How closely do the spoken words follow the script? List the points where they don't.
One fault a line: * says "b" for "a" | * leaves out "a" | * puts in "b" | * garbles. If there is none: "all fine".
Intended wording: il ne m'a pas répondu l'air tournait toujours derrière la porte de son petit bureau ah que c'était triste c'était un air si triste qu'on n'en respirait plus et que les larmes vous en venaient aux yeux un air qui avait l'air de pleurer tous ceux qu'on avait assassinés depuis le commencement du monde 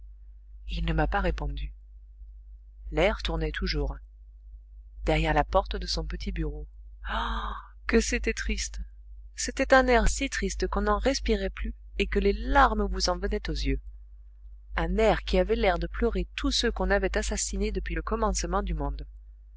all fine